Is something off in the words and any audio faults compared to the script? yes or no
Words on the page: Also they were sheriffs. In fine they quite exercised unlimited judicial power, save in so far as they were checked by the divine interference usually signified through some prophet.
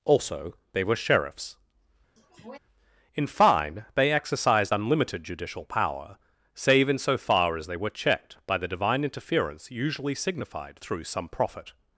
yes